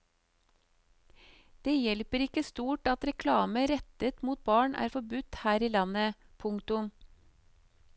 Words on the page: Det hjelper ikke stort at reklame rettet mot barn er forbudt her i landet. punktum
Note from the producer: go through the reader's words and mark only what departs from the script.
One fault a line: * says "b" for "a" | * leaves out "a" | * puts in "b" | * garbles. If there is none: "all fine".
all fine